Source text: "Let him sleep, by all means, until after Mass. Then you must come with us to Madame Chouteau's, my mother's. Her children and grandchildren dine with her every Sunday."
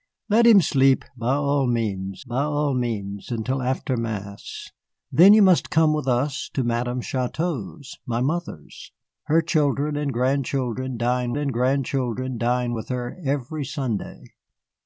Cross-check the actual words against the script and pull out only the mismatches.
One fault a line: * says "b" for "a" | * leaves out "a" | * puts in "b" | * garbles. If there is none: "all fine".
* puts in "by all means"
* puts in "and grandchildren dine"